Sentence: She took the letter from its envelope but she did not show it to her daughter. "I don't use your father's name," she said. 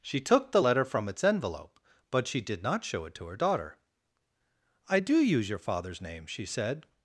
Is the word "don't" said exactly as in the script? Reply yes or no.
no